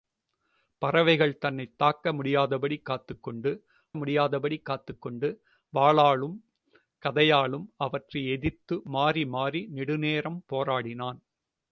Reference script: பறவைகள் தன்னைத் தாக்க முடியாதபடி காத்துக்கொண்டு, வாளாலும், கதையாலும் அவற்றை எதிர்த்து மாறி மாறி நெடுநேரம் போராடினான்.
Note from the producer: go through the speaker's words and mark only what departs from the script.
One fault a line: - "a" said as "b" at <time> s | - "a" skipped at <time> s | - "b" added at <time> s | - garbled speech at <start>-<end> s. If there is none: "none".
- "முடியாதபடி காத்துக்கொண்டு" added at 4.0 s